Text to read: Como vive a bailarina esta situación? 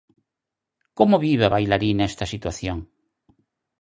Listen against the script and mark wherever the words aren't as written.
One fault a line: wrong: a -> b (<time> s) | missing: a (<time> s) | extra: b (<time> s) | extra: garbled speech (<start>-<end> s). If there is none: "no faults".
no faults